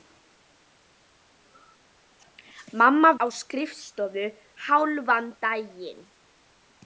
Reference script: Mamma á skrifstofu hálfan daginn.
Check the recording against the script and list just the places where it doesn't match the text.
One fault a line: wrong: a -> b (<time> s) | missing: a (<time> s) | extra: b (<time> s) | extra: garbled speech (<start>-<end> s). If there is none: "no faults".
no faults